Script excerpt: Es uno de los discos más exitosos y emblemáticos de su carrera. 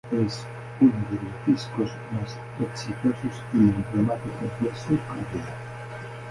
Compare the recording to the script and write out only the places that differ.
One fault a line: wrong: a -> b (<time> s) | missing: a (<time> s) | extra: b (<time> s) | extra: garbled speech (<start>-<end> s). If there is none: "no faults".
no faults